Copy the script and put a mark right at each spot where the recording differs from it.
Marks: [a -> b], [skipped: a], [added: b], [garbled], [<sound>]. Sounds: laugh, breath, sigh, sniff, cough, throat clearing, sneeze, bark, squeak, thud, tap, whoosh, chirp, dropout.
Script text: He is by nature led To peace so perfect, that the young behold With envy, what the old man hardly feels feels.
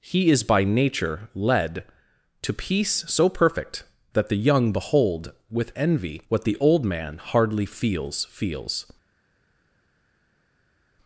He is by nature led To peace so perfect, that the young behold With envy, what the old man hardly feels feels.